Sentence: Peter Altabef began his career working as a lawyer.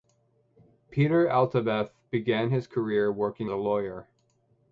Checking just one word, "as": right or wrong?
wrong